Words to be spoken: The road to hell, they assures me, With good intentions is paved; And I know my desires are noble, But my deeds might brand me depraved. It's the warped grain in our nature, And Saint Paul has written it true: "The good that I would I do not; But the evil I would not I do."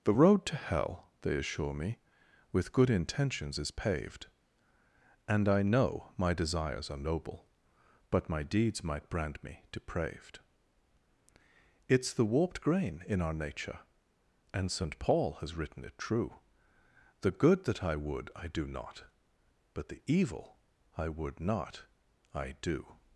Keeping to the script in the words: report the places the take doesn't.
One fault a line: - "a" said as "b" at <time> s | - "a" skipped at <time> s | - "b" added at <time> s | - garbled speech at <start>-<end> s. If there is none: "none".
- "assures" said as "assure" at 1.4 s